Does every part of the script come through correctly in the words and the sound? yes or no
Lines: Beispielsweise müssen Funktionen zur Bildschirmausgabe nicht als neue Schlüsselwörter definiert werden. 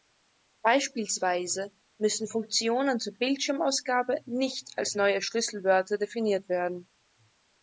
yes